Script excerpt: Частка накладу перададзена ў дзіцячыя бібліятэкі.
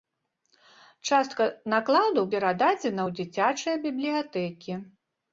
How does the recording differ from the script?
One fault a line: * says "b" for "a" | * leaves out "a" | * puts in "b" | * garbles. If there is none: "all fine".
all fine